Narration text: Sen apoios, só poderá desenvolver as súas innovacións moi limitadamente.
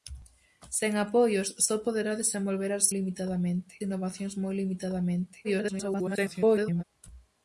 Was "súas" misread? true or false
true